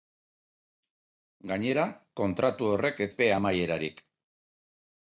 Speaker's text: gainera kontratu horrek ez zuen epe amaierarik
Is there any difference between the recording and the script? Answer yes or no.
yes